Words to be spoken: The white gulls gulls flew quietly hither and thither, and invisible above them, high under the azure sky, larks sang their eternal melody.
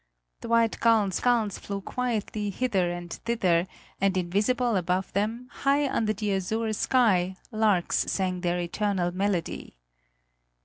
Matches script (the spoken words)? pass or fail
pass